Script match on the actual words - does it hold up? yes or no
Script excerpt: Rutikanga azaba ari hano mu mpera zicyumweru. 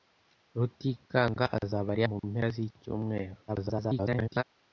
no